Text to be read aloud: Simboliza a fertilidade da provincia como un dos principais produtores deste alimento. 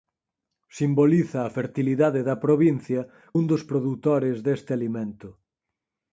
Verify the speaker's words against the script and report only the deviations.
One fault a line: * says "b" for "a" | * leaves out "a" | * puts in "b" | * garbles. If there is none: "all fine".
* leaves out "como"
* leaves out "principais"